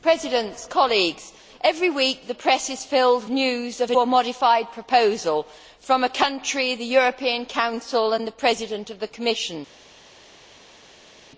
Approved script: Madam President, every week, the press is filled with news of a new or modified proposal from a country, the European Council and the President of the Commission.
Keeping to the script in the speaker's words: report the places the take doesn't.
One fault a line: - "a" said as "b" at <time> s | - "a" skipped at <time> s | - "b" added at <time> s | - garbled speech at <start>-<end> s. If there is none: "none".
- "with" skipped at 3.3 s
- "new" skipped at 3.9 s